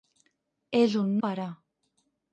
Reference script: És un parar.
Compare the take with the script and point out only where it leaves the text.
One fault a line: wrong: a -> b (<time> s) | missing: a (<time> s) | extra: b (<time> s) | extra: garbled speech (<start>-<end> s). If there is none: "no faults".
no faults